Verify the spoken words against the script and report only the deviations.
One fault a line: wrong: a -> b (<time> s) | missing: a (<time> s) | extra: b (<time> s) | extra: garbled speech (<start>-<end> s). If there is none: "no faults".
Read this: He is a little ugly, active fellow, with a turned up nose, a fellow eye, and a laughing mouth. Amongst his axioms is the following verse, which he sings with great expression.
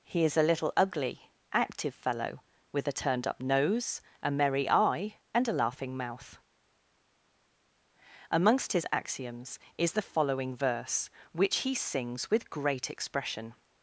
wrong: fellow -> merry (4.3 s)